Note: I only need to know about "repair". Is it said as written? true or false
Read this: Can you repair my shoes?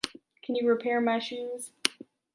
true